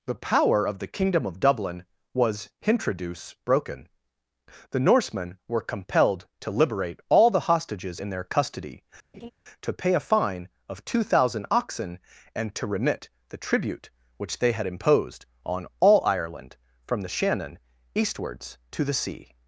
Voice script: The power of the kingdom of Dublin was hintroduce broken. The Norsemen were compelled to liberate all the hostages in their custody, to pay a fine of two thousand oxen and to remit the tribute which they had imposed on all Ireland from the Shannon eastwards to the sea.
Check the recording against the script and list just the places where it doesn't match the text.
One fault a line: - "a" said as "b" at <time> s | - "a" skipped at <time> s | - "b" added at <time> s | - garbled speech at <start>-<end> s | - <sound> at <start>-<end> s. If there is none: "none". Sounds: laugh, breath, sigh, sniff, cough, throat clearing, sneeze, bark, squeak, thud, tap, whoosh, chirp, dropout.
- laugh at 9.1-9.3 s